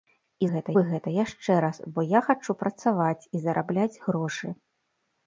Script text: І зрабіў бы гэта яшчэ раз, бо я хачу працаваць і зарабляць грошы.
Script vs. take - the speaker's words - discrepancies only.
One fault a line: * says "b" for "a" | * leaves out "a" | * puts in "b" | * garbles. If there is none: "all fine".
* says "гэта" for "зрабіў"